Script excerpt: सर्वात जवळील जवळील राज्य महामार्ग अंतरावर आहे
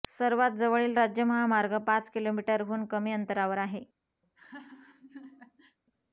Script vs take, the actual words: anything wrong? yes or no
yes